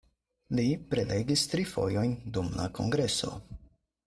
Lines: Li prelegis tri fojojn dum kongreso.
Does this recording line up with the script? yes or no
no